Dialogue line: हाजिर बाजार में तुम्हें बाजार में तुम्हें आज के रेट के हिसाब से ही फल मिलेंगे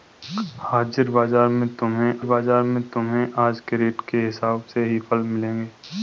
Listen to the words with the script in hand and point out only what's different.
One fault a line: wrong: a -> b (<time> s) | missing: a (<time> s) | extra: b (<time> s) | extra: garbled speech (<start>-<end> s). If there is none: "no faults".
no faults